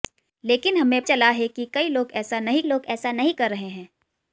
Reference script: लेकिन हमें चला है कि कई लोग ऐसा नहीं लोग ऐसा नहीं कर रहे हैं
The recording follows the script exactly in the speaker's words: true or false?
true